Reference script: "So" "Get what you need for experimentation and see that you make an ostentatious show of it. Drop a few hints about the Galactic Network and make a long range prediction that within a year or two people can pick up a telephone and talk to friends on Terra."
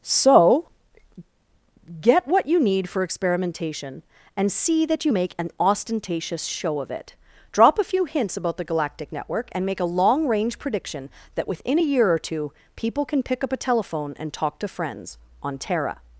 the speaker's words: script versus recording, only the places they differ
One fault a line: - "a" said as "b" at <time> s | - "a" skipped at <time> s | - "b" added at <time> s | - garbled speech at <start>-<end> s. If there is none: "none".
none